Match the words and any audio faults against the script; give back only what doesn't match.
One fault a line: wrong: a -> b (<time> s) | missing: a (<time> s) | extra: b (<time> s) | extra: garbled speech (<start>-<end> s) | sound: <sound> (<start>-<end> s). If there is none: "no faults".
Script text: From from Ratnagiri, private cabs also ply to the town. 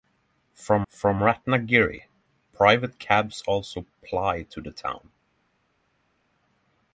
no faults